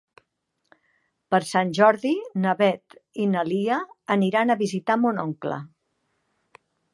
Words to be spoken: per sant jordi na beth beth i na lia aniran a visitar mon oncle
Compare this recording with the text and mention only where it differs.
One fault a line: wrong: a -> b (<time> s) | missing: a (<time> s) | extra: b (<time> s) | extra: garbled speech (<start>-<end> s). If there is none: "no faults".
missing: beth (3.0 s)